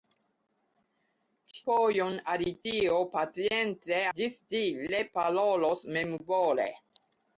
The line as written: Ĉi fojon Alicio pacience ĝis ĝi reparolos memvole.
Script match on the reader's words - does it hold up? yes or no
yes